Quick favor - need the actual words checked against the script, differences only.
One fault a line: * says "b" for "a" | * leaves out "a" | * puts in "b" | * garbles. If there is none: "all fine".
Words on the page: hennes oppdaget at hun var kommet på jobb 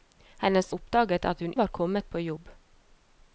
all fine